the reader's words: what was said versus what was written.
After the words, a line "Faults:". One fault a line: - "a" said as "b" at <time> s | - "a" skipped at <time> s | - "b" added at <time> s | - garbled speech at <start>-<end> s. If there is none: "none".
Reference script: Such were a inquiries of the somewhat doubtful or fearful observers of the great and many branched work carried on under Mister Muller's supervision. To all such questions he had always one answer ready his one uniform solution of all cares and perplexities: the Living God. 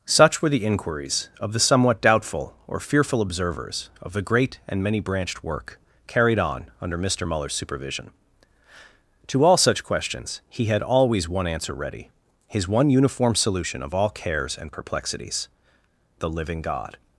Such were the inquiries of the somewhat doubtful or fearful observers of the great and many branched work carried on under Mister Muller's supervision. To all such questions he had always one answer ready his one uniform solution of all cares and perplexities: the Living God.
Faults:
- "a" said as "the" at 0.5 s